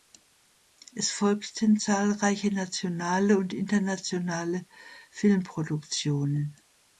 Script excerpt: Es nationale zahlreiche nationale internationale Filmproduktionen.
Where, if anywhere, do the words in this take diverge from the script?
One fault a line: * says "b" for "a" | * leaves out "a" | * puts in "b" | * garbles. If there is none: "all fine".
* says "folgten" for "nationale"
* puts in "und"